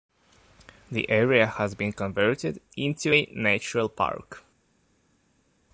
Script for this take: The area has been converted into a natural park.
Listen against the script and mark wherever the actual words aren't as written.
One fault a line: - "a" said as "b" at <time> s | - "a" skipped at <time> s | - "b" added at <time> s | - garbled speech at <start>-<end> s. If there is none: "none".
none